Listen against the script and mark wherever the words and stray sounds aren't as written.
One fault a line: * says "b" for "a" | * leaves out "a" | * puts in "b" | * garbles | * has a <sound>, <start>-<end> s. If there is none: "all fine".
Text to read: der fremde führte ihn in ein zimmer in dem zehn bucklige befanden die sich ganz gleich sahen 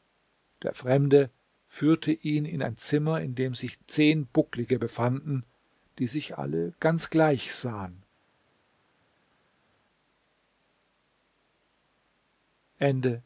* puts in "sich"
* puts in "alle"